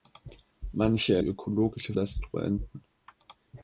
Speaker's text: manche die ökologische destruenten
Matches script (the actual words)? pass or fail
pass